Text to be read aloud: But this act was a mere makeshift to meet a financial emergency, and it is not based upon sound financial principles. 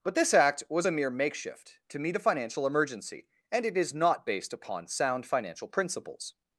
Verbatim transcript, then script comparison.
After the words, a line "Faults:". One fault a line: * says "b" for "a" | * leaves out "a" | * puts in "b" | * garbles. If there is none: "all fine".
But this act was a mere makeshift to meet a financial emergency, and it is not based upon sound financial principles.
Faults:
all fine